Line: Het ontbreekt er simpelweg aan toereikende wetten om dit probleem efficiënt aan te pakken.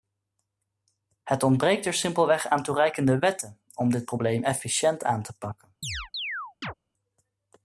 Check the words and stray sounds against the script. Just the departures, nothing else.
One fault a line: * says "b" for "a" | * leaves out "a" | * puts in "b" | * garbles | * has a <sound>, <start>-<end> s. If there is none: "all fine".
* has a chirp, 5.8-6.7 s